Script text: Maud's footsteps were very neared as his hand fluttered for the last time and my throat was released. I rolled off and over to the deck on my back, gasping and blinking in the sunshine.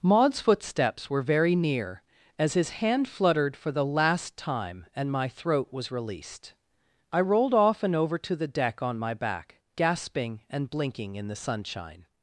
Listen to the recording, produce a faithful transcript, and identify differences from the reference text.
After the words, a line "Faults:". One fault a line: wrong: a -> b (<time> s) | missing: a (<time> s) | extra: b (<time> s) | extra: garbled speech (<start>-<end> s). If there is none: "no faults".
Maud's footsteps were very near as his hand fluttered for the last time and my throat was released. I rolled off and over to the deck on my back, gasping and blinking in the sunshine.
Faults:
wrong: neared -> near (1.6 s)